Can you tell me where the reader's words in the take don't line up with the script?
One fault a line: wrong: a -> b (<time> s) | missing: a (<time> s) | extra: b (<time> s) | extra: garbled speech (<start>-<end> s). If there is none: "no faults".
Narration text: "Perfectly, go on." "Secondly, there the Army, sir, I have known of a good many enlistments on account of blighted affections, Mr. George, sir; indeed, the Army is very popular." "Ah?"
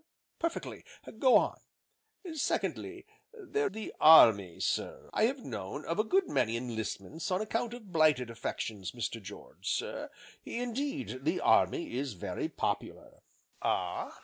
no faults